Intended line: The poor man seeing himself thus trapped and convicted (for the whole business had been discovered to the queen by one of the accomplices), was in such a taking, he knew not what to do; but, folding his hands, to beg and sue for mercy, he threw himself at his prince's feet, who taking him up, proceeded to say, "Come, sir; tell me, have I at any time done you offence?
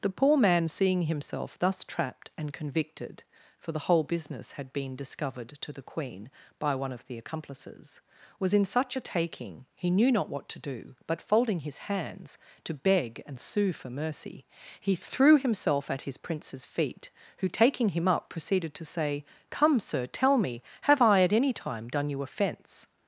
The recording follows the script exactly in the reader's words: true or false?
true